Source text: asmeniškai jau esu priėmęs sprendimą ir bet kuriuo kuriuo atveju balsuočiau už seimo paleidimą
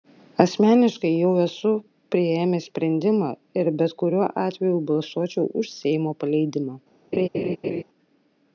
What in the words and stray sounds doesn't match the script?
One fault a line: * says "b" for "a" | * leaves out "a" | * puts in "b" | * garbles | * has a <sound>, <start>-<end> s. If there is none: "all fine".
* leaves out "kuriuo"
* has a laugh, 7.1-7.8 s